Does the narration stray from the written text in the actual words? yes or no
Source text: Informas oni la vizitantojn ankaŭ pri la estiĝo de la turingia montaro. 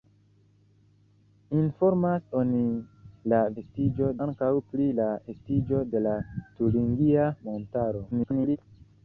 yes